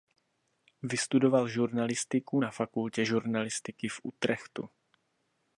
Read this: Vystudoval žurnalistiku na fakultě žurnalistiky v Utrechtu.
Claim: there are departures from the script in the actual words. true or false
false